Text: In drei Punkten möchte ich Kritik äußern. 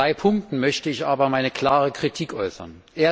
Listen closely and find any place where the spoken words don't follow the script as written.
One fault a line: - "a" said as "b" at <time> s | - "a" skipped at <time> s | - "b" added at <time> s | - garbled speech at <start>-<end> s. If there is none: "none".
- "aber meine klare" added at 1.0 s